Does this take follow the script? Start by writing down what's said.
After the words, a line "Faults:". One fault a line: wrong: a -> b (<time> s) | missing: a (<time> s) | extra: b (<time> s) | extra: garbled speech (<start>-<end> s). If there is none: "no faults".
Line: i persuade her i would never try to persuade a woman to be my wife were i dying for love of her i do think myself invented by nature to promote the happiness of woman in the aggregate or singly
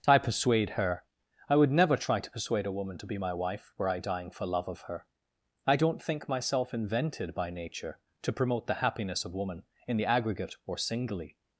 i persuade her i would never try to persuade a woman to be my wife were i dying for love of her i don't think myself invented by nature to promote the happiness of woman in the aggregate or singly
Faults:
wrong: do -> don't (5.7 s)